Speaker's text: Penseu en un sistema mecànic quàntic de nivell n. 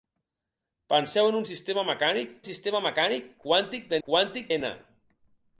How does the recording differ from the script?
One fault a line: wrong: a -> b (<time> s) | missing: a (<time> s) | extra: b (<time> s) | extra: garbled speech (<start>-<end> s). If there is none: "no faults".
extra: sistema mecànic (2.5 s)
wrong: nivell -> quàntic (4.1 s)